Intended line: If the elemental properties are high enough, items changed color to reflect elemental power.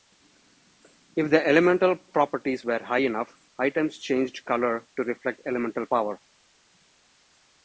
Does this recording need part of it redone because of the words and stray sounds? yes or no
yes